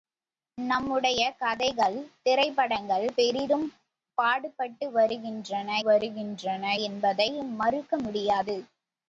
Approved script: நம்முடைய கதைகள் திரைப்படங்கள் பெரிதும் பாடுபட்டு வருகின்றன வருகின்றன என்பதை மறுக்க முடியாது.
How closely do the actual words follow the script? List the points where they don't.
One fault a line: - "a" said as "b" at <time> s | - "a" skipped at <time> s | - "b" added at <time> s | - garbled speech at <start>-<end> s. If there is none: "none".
none